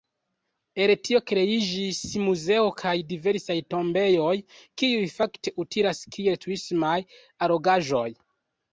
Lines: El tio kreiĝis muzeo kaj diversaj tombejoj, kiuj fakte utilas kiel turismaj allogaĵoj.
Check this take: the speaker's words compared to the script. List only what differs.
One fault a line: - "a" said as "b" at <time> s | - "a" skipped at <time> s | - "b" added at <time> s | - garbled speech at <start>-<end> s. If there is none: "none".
none